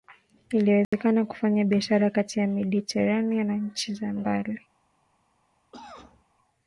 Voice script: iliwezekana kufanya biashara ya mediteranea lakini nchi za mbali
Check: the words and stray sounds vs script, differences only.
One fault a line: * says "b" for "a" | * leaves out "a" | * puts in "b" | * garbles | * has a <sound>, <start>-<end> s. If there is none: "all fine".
* has a dropout, 0.8-0.9 s
* puts in "kati"
* says "na" for "lakini"
* has a cough, 5.7-6.2 s